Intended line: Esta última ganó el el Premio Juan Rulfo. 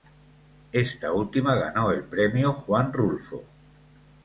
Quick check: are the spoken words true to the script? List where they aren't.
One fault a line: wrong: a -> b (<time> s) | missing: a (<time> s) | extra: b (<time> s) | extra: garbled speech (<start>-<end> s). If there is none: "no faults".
missing: el (2.0 s)